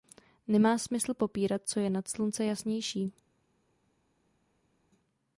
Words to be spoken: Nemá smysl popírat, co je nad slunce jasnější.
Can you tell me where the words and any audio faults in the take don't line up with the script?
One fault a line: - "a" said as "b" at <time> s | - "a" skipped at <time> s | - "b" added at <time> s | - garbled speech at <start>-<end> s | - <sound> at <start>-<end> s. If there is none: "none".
none